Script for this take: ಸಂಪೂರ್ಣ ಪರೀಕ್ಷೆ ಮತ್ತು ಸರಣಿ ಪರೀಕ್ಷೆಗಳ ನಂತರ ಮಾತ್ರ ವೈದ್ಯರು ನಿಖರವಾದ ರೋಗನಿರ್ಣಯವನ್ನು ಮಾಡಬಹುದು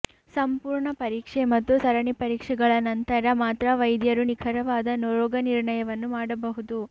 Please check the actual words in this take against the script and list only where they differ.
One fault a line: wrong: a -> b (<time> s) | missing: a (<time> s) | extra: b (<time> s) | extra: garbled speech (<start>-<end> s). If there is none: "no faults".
no faults